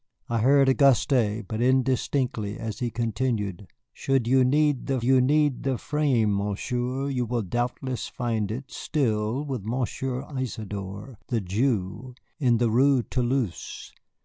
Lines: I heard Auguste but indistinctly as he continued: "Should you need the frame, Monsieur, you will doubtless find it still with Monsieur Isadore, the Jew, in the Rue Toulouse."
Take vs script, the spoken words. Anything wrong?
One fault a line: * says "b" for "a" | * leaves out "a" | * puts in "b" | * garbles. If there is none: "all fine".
* puts in "you need the"